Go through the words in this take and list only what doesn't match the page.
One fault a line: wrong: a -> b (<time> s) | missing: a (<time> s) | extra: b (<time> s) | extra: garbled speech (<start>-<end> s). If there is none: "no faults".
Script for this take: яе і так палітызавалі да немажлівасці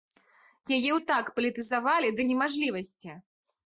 no faults